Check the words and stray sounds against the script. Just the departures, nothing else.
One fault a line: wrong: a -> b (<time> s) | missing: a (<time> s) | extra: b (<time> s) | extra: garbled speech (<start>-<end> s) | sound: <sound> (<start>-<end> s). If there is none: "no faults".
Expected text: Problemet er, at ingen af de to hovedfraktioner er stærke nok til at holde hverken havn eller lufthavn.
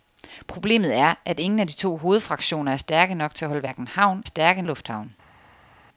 wrong: eller -> stærke (4.2 s)